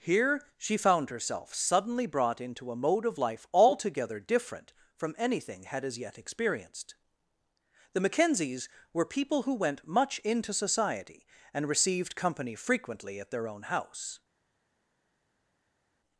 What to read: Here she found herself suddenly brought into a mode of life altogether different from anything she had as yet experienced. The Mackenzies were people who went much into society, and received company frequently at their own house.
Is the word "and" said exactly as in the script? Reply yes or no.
yes